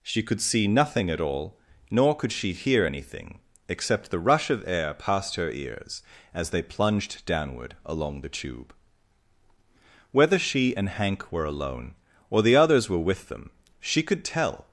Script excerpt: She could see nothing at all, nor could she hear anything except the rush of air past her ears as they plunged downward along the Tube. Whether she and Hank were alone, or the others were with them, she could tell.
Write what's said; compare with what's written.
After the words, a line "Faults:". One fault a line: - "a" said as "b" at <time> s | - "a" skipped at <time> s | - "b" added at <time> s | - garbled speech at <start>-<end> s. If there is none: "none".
She could see nothing at all, nor could she hear anything except the rush of air past her ears as they plunged downward along the Tube. Whether she and Hank were alone, or the others were with them, she could tell.
Faults:
none